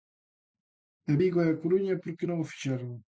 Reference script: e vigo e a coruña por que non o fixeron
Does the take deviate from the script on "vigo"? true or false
false